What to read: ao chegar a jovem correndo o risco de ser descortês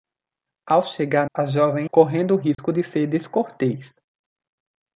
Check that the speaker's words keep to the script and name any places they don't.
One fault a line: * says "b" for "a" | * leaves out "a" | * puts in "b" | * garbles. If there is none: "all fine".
all fine